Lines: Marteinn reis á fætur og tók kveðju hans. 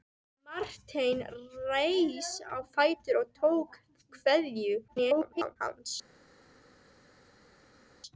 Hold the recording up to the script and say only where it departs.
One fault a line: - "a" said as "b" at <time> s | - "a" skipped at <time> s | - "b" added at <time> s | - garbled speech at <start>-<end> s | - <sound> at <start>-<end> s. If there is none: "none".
- garbled speech at 4.9-5.6 s